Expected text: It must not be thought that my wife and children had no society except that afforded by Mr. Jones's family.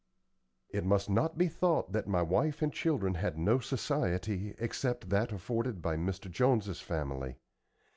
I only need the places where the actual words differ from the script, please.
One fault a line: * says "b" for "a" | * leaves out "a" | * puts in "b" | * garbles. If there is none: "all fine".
all fine